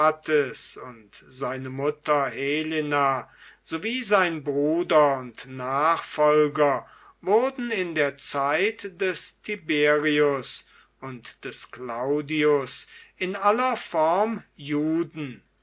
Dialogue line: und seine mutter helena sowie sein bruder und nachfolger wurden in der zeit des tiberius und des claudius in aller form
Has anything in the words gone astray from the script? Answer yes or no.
no